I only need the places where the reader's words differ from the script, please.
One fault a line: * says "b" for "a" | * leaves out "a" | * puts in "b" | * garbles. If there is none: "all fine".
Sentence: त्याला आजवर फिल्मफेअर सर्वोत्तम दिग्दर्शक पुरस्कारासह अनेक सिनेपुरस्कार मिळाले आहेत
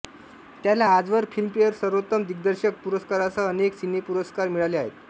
all fine